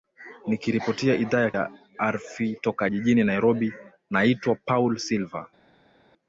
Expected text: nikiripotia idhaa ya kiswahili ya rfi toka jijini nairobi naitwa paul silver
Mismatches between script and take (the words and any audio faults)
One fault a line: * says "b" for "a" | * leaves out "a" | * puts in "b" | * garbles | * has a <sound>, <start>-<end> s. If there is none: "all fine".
* leaves out "kiswahili"